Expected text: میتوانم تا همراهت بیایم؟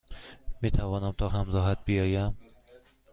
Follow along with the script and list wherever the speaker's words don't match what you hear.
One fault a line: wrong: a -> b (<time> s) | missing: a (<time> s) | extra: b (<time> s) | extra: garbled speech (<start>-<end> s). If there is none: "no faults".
no faults